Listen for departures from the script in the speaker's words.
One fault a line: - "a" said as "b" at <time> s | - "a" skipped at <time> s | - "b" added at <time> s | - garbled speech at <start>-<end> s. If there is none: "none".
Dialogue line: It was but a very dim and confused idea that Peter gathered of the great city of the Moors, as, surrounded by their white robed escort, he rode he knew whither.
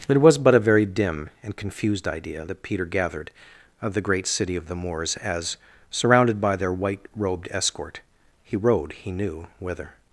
none